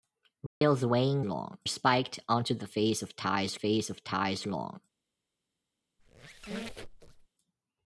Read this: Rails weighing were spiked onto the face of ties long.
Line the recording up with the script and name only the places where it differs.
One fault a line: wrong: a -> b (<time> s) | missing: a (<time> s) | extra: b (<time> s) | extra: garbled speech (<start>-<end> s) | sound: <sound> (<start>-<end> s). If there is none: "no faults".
sound: dropout (0.5-0.6 s)
wrong: were -> long (1.2 s)
extra: face of ties (3.5 s)
sound: squeak (6.0-7.3 s)